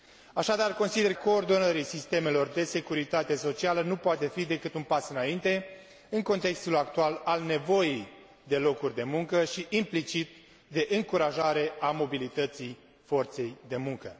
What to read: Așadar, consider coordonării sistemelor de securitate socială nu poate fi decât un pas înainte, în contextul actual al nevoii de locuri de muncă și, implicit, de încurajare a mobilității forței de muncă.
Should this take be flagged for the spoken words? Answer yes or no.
no